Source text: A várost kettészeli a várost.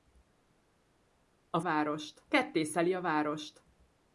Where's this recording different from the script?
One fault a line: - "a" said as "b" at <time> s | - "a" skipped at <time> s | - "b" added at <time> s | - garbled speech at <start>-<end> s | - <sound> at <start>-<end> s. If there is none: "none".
none